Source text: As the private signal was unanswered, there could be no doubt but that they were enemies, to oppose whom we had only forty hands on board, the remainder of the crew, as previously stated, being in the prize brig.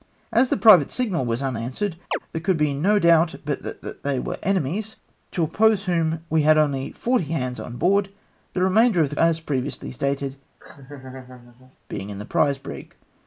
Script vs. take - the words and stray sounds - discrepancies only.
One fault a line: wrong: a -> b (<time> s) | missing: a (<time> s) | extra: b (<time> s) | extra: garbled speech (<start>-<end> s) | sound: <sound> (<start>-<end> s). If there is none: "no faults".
sound: chirp (2.1-2.2 s)
extra: that (3.8 s)
missing: crew (9.1 s)
sound: laugh (10.6-11.8 s)